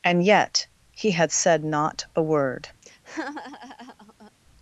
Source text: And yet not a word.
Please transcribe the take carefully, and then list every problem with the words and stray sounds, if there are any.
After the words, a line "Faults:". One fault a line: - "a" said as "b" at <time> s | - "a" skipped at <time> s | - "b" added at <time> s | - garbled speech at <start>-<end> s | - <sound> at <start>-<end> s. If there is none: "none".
And yet he had said not a word.
Faults:
- "he had said" added at 0.9 s
- laugh at 2.8-4.3 s